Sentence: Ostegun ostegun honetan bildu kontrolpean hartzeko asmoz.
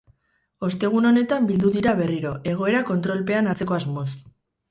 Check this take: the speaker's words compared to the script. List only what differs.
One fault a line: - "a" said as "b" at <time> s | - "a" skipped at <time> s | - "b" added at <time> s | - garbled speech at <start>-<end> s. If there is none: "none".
- "ostegun" skipped at 1.1 s
- "dira berriro egoera" added at 1.8 s